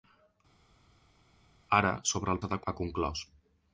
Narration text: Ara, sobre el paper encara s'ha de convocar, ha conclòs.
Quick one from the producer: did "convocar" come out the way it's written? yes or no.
no